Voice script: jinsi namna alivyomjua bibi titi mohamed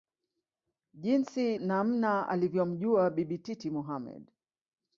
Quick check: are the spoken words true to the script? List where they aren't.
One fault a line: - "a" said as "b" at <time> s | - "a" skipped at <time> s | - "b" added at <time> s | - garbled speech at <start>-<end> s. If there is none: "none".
none